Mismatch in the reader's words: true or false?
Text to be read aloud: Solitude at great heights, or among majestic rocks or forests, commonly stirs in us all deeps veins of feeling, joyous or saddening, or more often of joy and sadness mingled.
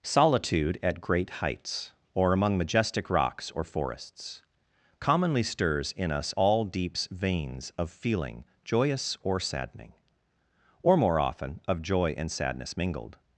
false